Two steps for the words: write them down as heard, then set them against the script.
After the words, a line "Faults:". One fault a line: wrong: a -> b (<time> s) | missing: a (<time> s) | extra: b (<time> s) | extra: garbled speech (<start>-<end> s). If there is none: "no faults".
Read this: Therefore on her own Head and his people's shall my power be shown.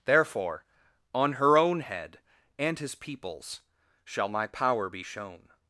Therefore on her own Head and his people's shall my power be shown.
Faults:
no faults